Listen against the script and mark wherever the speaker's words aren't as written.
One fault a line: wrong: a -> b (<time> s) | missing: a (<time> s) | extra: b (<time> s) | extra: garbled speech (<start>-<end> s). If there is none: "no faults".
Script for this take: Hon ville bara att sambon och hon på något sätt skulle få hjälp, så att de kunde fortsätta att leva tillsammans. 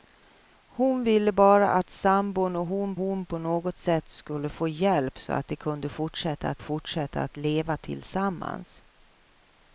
extra: hon (3.0 s)
extra: fortsätta att (6.6 s)